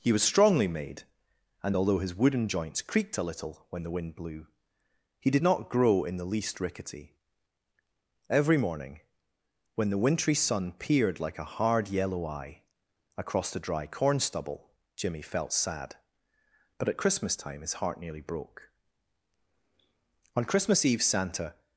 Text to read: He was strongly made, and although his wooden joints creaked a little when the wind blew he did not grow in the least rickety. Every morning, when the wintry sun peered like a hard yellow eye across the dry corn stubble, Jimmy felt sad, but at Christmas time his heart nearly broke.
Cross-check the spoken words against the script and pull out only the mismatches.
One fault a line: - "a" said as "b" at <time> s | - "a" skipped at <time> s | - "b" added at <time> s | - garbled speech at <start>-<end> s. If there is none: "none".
- "On Christmas Eve Santa" added at 20.4 s